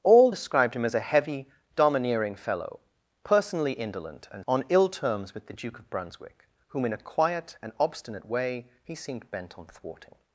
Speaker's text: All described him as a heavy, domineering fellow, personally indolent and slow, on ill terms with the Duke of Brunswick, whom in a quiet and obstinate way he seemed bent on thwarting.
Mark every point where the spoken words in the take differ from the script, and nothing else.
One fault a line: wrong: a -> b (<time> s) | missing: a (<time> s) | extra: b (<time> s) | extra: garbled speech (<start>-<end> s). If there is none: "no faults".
missing: slow (4.5 s)